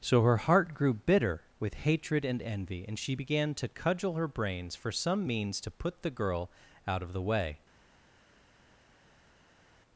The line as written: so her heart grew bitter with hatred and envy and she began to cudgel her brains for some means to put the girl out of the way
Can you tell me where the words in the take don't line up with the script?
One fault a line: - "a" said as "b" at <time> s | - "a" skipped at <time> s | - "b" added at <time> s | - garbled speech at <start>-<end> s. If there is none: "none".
none